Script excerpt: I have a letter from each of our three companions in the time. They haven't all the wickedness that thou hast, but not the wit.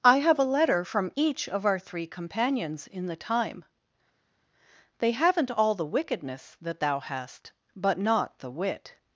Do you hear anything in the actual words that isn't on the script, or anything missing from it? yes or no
no